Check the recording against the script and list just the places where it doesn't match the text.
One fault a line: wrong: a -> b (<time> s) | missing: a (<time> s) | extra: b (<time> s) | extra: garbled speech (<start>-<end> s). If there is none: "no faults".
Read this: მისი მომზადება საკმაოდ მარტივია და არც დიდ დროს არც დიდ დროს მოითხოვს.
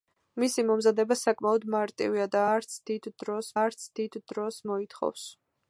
no faults